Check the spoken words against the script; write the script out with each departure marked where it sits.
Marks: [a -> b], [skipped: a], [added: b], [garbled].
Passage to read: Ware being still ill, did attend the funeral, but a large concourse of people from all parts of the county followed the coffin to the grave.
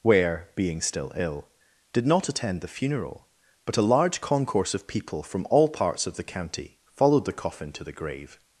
Ware being still ill, did [added: not] attend the funeral, but a large concourse of people from all parts of the county followed the coffin to the grave.